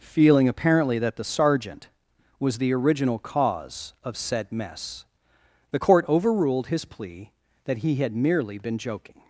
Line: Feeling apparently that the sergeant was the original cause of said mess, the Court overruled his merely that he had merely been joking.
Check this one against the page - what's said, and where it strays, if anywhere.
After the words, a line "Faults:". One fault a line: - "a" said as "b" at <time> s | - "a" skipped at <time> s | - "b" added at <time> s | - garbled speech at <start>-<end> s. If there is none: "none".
Feeling apparently that the sergeant was the original cause of said mess, the Court overruled his plea that he had merely been joking.
Faults:
- "merely" said as "plea" at 6.8 s